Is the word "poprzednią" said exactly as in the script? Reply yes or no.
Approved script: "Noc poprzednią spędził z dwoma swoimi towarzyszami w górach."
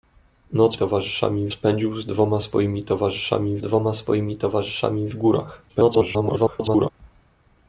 no